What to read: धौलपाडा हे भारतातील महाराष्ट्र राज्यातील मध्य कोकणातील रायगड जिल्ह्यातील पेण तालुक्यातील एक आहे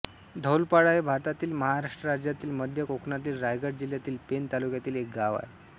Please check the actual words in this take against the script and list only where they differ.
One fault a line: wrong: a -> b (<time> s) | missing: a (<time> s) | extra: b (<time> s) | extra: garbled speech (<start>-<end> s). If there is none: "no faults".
extra: गाव (5.1 s)